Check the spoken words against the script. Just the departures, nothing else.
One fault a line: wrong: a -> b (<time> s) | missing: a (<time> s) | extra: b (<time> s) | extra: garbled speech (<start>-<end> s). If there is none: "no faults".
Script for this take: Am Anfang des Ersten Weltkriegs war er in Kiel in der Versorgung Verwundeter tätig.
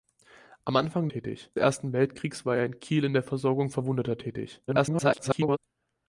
wrong: des -> tätig (1.1 s)
extra: garbled speech (4.7-5.6 s)